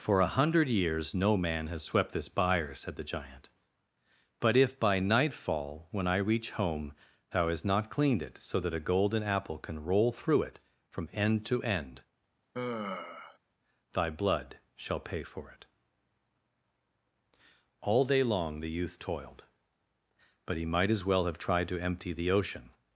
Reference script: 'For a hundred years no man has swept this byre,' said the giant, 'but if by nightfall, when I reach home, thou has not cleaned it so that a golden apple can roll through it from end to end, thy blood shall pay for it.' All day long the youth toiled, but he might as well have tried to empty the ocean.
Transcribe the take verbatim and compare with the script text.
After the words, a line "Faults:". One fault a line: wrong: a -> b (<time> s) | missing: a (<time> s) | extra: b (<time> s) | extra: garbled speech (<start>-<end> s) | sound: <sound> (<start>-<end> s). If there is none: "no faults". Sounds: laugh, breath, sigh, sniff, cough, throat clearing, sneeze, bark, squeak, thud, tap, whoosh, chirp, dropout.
'For a hundred years no man has swept this byre,' said the giant, 'but if by nightfall, when I reach home, thou hast not cleaned it so that a golden apple can roll through it from end to end, thy blood shall pay for it.' All day long the youth toiled, but he might as well have tried to empty the ocean.
Faults:
wrong: has -> hast (7.5 s)
sound: sigh (12.5-13.4 s)